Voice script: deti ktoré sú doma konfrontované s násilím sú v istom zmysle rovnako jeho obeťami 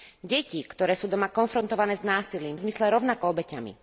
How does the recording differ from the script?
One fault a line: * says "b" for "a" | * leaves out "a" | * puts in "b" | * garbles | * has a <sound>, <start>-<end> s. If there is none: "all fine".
* leaves out "sú v istom"
* leaves out "jeho"